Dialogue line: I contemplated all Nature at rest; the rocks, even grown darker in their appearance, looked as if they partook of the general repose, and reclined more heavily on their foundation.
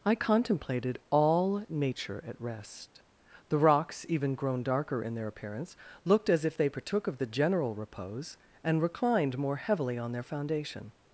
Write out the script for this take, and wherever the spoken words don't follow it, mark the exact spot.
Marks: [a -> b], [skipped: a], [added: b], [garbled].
I contemplated all Nature at rest; the rocks, even grown darker in their appearance, looked as if they partook of the general repose, and reclined more heavily on their foundation.